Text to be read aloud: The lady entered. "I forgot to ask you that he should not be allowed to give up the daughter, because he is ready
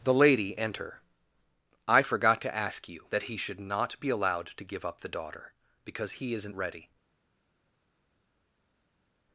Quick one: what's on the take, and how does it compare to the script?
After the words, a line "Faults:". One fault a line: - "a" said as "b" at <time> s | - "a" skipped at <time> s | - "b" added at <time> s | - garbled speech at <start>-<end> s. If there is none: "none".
The lady enter. "I forgot to ask you that he should not be allowed to give up the daughter, because he isn't ready
Faults:
- "entered" said as "enter" at 0.6 s
- "is" said as "isn't" at 6.3 s